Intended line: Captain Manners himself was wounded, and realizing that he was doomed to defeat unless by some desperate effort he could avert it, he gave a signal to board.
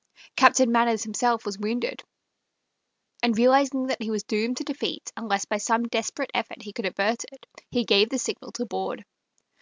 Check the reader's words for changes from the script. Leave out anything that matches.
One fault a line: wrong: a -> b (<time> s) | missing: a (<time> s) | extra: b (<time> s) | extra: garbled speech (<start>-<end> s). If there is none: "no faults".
wrong: a -> the (8.1 s)